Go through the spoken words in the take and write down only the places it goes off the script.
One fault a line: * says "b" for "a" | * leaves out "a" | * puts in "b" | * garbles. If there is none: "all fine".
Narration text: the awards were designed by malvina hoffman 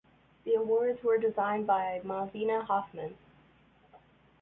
all fine